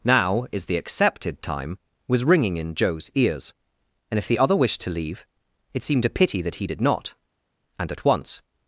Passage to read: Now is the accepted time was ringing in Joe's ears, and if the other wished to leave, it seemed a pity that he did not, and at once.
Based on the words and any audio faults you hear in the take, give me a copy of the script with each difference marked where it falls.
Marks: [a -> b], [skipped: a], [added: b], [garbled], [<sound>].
Now is the accepted time was ringing in Joe's ears, and if the other wished to leave, it seemed a pity that he did not, and at once.